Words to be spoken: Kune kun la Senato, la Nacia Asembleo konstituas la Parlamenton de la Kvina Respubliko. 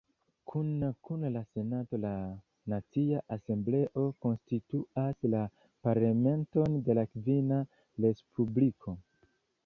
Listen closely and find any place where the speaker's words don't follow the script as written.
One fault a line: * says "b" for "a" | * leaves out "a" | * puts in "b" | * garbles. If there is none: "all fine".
all fine